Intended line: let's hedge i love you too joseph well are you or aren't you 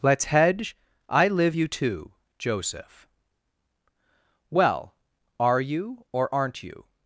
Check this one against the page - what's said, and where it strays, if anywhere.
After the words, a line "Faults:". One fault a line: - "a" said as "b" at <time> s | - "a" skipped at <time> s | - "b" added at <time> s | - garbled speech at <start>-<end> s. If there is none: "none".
let's hedge i live you too joseph well are you or aren't you
Faults:
- "love" said as "live" at 1.3 s